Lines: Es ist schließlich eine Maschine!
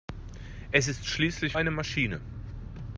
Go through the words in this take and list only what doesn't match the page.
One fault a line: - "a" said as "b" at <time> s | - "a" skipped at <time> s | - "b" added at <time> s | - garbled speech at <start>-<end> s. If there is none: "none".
none